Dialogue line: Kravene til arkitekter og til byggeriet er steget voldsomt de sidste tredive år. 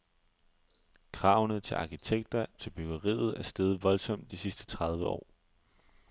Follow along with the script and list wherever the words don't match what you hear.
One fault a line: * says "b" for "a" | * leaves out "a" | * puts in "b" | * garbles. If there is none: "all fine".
* leaves out "og"